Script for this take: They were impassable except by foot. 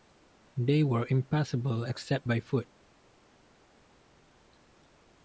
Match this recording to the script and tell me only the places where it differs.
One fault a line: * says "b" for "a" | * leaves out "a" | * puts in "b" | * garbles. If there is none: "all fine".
all fine